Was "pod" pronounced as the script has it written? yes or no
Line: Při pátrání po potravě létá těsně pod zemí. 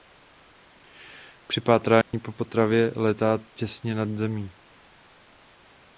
no